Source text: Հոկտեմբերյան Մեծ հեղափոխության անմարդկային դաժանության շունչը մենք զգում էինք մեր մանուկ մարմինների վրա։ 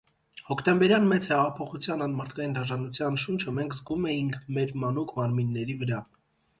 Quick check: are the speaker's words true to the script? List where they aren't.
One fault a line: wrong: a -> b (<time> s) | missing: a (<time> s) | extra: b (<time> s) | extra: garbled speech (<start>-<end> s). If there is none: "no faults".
no faults